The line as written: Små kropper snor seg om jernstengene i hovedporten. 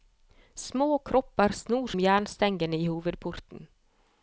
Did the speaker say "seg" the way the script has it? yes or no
no